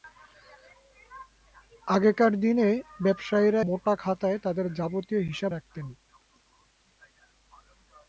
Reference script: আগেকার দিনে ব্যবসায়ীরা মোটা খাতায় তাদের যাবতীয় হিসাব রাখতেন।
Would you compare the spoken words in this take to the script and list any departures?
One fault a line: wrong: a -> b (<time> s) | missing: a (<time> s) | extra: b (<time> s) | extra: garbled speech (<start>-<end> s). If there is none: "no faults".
no faults